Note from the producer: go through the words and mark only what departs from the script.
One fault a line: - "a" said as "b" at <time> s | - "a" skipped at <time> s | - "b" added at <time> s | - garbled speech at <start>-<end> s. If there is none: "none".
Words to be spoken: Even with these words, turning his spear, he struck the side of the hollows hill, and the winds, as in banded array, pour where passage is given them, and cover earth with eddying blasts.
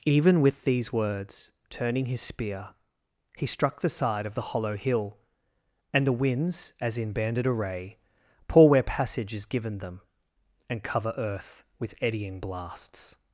- "hollows" said as "hollow" at 4.4 s